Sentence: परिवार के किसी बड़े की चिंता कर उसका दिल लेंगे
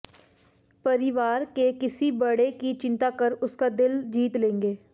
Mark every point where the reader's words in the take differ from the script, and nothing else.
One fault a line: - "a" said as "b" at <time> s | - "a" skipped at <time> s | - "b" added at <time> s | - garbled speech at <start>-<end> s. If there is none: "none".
- "जीत" added at 4.1 s